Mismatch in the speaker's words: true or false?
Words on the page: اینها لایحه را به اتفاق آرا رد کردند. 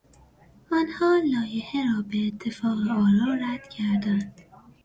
true